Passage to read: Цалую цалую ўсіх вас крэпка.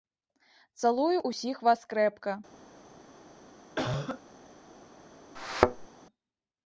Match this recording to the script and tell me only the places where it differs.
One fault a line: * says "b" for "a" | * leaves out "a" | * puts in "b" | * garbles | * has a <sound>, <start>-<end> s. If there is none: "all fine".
* leaves out "цалую"
* has a cough, 3.8-4.2 s
* has a thud, 5.4-5.9 s